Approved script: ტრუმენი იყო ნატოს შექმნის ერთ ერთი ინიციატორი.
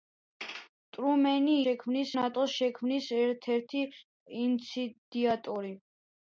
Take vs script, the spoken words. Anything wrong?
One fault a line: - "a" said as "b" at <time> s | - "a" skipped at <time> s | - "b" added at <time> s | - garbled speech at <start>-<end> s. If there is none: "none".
- "იყო" said as "შექმნის" at 1.6 s